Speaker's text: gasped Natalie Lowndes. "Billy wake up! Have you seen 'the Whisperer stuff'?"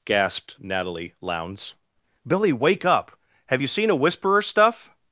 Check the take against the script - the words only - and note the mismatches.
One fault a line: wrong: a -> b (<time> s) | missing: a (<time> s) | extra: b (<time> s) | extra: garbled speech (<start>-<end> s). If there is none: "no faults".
wrong: the -> a (3.9 s)